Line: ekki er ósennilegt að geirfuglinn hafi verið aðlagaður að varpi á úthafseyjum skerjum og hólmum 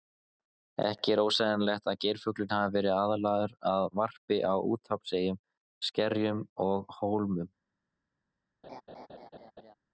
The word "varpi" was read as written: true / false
true